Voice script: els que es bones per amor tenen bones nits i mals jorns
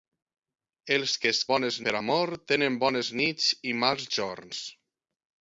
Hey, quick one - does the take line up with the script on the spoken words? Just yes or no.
yes